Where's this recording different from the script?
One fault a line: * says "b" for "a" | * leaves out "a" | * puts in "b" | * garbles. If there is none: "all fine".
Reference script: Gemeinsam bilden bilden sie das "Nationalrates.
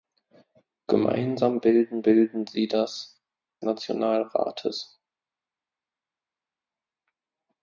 all fine